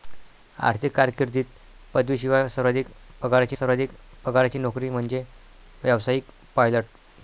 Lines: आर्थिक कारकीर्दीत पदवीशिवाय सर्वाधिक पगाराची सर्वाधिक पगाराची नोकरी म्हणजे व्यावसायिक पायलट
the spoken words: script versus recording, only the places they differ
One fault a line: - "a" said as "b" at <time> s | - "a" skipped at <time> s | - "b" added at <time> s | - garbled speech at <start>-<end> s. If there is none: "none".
none